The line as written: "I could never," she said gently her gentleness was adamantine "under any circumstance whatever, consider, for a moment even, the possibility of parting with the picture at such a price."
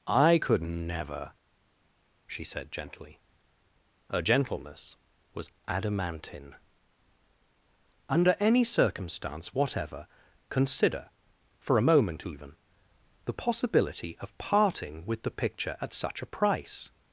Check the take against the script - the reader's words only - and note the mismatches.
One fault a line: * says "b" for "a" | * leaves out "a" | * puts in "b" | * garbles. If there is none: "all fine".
all fine